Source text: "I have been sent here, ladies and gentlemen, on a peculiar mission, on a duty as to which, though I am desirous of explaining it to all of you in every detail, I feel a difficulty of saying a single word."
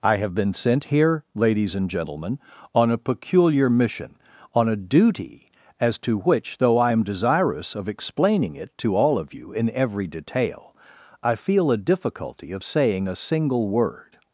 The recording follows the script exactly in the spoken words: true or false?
true